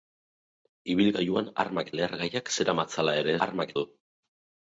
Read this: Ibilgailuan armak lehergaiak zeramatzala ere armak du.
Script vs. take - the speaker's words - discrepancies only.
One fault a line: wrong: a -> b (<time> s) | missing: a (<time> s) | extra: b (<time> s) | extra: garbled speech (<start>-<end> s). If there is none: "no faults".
no faults